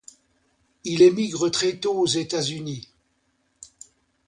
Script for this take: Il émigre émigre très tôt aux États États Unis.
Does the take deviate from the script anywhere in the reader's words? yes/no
yes